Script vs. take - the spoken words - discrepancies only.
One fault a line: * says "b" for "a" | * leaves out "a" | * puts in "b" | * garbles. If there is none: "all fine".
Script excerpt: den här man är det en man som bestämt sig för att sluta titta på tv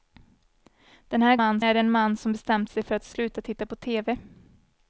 all fine